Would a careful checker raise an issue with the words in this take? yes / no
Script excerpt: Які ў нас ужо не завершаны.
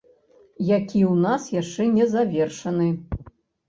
yes